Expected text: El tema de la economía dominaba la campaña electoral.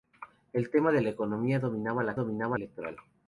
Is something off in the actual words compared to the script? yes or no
yes